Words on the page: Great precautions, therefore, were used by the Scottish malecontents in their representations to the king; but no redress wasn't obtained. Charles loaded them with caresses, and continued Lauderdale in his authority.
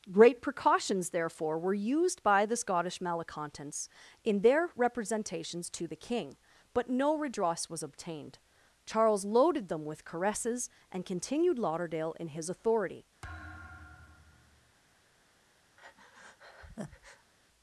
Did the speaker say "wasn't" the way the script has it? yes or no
no